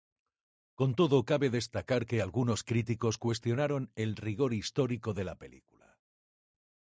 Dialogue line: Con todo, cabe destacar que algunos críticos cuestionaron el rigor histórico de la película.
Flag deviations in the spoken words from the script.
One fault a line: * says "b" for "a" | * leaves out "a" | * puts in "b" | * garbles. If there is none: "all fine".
all fine